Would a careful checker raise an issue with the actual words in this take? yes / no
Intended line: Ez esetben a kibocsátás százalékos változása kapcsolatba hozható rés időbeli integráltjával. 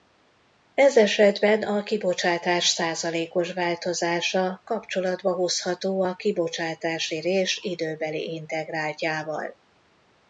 yes